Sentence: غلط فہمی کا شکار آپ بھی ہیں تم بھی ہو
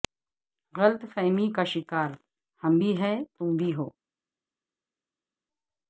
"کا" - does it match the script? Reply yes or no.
yes